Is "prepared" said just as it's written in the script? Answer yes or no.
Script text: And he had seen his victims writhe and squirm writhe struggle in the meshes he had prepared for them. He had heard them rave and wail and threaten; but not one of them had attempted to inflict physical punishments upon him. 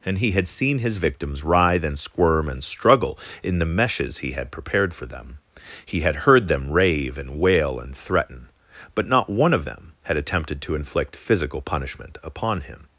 yes